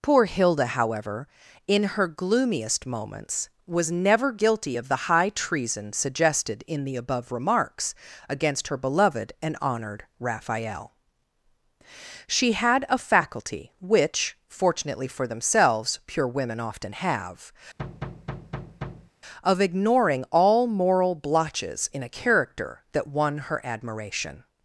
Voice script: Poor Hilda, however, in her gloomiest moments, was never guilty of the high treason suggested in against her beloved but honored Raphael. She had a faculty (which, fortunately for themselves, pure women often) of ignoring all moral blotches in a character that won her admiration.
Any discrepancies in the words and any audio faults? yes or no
yes